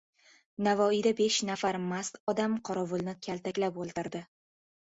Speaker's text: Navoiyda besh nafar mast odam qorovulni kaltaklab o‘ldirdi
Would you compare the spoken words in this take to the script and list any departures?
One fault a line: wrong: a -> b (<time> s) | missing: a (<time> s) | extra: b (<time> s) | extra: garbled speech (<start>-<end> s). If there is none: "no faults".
no faults